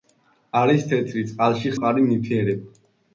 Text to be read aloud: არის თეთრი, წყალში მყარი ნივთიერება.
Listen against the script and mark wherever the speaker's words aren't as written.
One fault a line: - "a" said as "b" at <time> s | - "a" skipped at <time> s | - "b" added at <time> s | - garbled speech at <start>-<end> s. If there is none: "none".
none